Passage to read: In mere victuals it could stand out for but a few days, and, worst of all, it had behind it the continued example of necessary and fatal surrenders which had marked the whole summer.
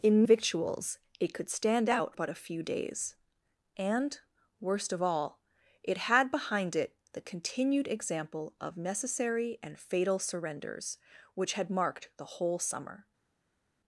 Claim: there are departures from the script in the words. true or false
true